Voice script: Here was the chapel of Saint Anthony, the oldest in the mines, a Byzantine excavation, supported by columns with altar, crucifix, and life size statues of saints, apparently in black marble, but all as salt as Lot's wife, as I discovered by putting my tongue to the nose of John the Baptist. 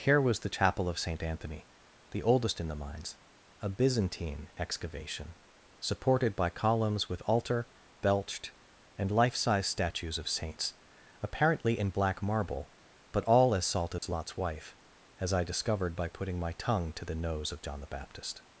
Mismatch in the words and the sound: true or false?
true